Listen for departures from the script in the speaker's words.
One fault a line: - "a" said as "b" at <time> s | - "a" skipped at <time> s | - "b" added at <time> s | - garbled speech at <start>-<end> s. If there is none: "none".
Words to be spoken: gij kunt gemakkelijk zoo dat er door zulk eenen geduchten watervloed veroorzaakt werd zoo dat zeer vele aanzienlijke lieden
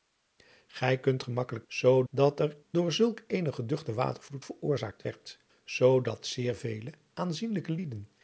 none